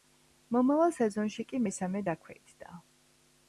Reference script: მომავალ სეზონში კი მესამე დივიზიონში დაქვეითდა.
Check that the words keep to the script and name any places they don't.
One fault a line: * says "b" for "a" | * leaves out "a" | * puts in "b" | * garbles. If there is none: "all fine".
* leaves out "დივიზიონში"